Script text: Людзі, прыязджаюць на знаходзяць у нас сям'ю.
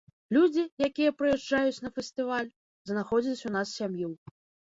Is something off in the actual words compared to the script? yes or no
yes